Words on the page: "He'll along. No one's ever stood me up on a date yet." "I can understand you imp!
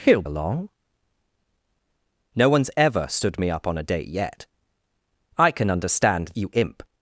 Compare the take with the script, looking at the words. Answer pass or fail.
pass